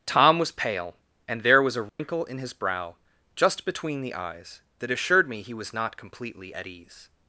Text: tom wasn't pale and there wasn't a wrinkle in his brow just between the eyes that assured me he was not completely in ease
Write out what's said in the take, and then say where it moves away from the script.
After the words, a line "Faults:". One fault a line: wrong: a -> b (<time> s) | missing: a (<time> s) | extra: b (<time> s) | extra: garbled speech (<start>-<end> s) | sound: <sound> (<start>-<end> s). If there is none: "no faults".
tom was pale and there was a wrinkle in his brow just between the eyes that assured me he was not completely at ease
Faults:
wrong: wasn't -> was (0.4 s)
wrong: wasn't -> was (1.6 s)
sound: dropout (1.9-2.0 s)
wrong: in -> at (6.5 s)